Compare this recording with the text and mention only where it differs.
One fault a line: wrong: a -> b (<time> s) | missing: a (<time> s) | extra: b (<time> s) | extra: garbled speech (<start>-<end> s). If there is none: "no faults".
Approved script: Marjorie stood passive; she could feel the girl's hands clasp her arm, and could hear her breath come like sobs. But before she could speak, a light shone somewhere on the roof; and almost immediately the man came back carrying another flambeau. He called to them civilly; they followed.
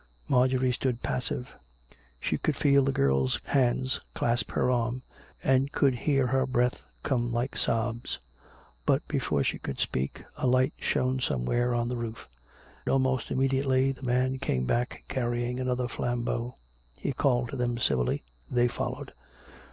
missing: and (12.3 s)